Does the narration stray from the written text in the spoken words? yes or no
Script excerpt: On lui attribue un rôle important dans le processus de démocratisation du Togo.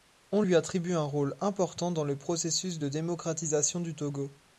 no